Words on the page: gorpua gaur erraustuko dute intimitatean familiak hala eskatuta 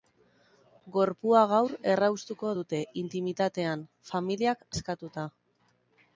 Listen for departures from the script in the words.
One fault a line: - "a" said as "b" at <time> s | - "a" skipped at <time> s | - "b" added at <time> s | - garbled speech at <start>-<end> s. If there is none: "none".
- "hala" skipped at 4.7 s